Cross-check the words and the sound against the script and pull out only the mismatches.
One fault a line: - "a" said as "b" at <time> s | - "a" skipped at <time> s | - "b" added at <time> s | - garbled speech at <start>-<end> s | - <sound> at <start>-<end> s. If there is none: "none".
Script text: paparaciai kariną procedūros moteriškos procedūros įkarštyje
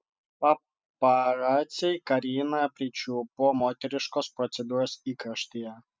- "procedūros" said as "pričiupo" at 2.8 s